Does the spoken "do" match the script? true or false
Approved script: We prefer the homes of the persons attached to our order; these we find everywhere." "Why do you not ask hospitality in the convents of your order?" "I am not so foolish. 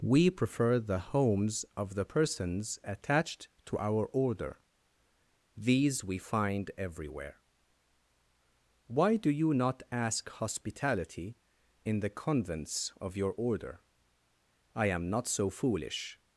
true